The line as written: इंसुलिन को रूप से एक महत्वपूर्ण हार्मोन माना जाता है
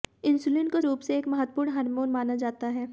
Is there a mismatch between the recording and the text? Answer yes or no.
no